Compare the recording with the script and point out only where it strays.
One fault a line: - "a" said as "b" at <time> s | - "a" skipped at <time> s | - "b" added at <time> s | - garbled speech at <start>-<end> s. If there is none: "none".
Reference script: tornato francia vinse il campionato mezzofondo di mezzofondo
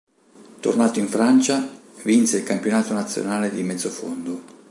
- "in" added at 1.0 s
- "mezzofondo" said as "nazionale" at 2.9 s